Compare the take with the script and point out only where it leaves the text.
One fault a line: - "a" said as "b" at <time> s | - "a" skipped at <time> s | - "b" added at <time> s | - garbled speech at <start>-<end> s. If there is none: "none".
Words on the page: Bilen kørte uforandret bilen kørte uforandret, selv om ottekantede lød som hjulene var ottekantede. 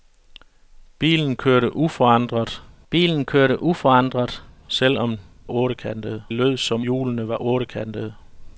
none